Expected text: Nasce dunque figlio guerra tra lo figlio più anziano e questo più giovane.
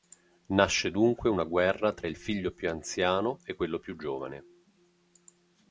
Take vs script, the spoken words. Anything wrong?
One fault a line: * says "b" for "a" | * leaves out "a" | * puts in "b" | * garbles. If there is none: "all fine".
* says "una" for "figlio"
* says "il" for "lo"
* says "quello" for "questo"